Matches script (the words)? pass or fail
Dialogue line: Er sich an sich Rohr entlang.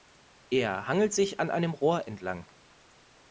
fail